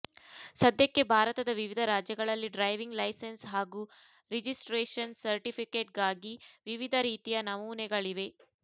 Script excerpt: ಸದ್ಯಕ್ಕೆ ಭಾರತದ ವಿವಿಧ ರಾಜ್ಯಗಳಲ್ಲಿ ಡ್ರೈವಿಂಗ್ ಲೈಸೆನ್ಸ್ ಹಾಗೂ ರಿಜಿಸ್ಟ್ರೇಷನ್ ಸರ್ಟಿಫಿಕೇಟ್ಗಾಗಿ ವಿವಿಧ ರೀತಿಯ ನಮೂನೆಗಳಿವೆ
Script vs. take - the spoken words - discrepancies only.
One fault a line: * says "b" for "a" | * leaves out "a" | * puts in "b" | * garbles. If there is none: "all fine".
all fine